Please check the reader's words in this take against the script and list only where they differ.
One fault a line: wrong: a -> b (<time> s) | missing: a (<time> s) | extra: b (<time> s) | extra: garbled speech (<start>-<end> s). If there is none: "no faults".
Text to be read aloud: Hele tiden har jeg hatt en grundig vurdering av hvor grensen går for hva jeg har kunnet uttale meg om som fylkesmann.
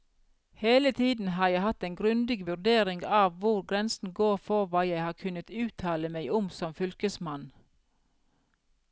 no faults